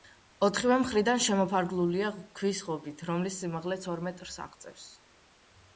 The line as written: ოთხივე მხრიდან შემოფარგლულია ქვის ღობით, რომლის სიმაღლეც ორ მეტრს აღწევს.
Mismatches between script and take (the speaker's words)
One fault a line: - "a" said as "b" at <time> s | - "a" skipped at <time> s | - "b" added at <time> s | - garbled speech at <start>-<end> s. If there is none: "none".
none